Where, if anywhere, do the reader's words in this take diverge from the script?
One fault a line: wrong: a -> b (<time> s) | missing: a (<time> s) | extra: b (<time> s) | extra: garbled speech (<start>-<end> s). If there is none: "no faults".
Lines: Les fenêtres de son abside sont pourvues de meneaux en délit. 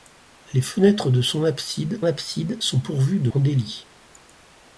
extra: abside (2.0 s)
missing: meneaux (3.3 s)